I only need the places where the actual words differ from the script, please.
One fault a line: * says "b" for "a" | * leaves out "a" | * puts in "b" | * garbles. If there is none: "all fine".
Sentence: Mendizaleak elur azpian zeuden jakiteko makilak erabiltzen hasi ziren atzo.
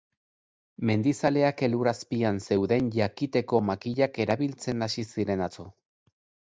all fine